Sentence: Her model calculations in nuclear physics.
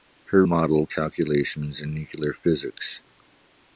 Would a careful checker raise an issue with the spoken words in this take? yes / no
no